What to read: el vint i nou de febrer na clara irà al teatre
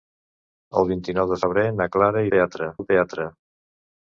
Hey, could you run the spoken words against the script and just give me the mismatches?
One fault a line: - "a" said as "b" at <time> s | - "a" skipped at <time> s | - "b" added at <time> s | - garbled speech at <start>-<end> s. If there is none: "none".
- "irà" said as "teatre" at 2.3 s